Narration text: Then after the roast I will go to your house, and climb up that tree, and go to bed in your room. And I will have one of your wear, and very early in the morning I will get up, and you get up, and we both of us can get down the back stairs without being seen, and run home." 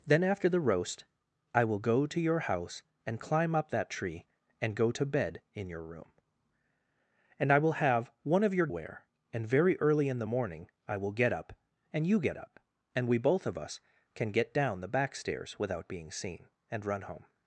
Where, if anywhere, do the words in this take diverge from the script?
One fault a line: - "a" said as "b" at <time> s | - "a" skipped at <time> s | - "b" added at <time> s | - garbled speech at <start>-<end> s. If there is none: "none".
none